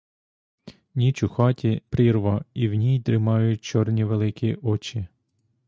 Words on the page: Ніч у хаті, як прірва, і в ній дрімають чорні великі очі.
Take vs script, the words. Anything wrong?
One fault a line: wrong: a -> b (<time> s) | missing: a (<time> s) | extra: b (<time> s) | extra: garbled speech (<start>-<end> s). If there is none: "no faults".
missing: як (1.8 s)